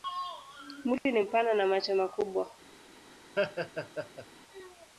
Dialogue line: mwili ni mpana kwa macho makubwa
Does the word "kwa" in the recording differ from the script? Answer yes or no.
yes